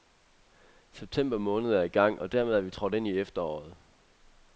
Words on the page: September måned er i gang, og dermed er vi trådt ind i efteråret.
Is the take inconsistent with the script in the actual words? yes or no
no